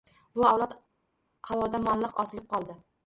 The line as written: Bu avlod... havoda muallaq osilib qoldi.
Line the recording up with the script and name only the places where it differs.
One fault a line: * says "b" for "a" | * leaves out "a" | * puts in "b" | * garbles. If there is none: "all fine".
all fine